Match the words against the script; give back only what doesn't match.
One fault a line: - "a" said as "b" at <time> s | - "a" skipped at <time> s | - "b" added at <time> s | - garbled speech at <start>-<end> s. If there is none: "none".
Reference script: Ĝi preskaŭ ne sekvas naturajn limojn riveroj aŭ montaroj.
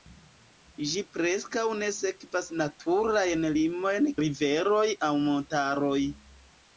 none